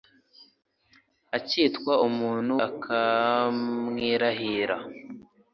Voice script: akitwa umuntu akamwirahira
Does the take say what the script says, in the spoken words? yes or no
yes